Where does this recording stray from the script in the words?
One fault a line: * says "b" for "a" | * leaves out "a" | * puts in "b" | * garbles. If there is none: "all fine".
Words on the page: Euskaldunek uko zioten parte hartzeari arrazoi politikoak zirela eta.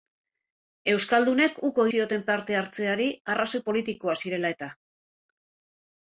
all fine